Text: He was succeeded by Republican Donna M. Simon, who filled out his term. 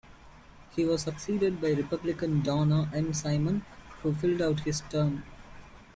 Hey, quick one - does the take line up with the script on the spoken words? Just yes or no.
yes